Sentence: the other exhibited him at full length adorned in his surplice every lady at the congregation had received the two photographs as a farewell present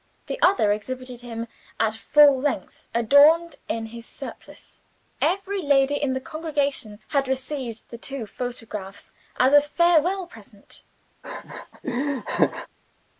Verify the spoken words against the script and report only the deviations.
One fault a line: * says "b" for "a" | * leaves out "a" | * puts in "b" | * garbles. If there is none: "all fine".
* says "in" for "at"